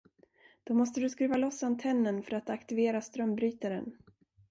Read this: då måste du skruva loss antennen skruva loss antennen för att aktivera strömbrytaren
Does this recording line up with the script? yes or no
no